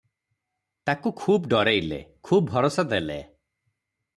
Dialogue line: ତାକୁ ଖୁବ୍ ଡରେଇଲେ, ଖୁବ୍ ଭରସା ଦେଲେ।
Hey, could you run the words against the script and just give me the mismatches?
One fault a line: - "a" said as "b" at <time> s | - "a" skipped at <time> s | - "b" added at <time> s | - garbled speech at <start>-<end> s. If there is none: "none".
none